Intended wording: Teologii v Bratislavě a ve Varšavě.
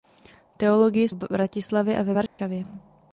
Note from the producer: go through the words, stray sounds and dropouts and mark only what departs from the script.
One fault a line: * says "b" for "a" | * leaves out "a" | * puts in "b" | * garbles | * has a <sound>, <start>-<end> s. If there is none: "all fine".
* has a dropout, 2.3-2.4 s